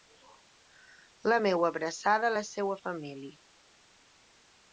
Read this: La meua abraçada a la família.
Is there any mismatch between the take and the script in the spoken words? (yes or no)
yes